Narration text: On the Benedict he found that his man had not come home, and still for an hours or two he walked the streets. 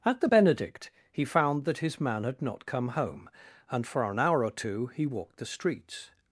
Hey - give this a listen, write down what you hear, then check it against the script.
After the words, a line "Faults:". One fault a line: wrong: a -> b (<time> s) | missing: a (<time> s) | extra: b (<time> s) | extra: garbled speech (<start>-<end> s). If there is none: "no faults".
At the Benedict he found that his man had not come home, and for an hour or two he walked the streets.
Faults:
wrong: On -> At (0.0 s)
missing: still (3.9 s)
wrong: hours -> hour (4.2 s)